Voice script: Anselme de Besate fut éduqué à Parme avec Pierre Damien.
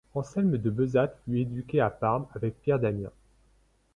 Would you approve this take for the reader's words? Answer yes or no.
yes